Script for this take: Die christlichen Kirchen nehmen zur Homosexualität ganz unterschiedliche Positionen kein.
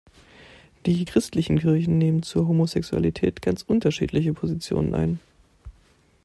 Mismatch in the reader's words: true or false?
true